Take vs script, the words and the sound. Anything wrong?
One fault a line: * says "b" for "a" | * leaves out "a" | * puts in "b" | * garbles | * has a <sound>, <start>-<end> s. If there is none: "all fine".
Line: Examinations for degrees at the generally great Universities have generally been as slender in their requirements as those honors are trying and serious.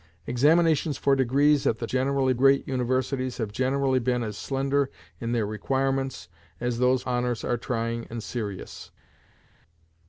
all fine